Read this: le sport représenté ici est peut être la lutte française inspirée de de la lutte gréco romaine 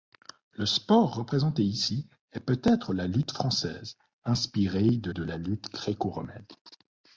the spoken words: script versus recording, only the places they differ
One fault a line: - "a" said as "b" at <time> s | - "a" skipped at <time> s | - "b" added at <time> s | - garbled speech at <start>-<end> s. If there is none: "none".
none